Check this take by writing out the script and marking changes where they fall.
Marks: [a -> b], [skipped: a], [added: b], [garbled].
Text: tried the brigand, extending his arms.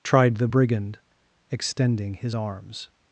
tried the brigand, extending his arms.